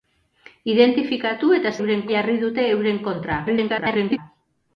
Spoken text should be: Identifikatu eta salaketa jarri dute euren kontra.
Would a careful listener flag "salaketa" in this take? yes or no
yes